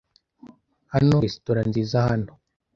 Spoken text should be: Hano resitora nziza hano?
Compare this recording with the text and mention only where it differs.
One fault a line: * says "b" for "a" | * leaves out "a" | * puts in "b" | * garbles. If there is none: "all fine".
all fine